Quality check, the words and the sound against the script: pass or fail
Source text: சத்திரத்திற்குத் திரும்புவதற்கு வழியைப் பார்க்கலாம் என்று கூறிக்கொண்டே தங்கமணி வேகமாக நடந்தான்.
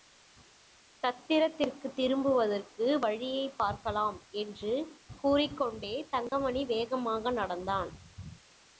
fail